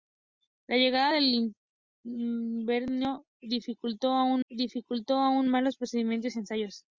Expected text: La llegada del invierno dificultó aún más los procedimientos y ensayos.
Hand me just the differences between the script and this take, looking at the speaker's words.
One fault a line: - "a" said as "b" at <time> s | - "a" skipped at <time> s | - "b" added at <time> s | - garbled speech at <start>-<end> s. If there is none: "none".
- "dificultó aún" added at 4.5 s